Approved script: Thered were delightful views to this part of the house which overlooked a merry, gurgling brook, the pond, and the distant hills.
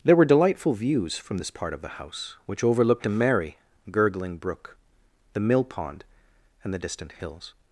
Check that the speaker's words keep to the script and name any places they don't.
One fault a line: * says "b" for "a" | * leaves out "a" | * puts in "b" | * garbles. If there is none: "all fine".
* says "There" for "Thered"
* says "from" for "to"
* puts in "mill"